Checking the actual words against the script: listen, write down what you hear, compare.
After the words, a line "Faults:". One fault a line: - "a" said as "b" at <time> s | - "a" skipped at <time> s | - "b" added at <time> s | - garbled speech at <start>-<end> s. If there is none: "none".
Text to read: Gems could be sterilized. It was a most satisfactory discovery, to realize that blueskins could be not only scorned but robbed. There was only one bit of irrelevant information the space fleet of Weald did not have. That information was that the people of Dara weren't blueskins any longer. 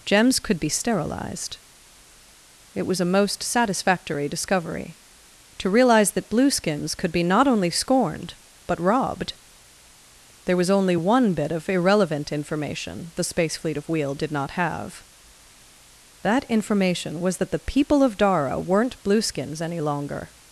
Gems could be sterilized. It was a most satisfactory discovery, to realize that blueskins could be not only scorned but robbed. There was only one bit of irrelevant information the space fleet of Weald did not have. That information was that the people of Dara weren't blueskins any longer.
Faults:
none